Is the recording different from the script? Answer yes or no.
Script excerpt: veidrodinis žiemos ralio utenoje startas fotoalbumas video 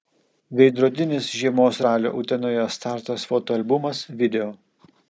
no